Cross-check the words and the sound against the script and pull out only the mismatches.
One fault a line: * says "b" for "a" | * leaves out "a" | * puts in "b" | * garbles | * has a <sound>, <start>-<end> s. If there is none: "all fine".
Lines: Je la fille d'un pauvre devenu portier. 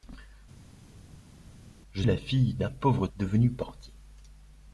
all fine